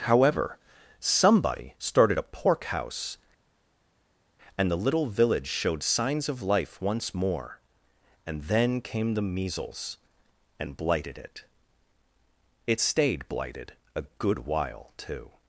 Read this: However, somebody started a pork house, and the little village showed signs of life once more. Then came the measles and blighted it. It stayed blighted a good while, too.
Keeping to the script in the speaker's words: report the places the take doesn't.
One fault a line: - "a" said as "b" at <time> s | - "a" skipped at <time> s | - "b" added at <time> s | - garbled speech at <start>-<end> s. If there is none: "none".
- "And" added at 8.2 s